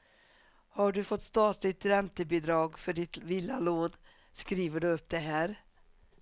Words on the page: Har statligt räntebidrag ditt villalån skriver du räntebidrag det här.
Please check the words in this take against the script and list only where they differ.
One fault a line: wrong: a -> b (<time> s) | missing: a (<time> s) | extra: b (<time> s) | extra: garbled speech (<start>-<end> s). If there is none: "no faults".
extra: du fått (0.9 s)
extra: för (2.8 s)
wrong: räntebidrag -> upp (4.9 s)